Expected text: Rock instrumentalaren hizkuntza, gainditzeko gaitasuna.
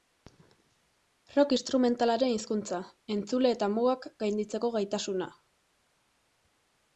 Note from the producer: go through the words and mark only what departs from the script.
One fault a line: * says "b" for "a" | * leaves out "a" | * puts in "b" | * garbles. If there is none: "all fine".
* puts in "entzule eta mugak"